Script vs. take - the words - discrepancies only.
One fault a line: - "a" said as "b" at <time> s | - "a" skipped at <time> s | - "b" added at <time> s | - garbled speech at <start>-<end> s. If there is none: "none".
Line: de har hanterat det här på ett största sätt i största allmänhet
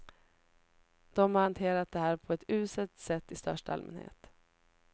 - "största" said as "uselt" at 2.5 s